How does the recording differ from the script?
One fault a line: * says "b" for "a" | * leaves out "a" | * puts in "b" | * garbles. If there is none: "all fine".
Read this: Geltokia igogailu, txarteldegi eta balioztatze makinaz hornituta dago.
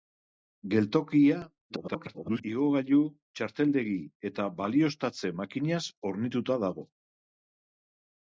* garbles